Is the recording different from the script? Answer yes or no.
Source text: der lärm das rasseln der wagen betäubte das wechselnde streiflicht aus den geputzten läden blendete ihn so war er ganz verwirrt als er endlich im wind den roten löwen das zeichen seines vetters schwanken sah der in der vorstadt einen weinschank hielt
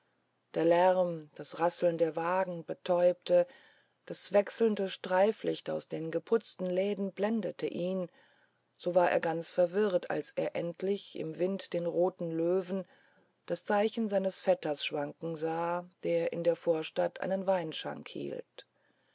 no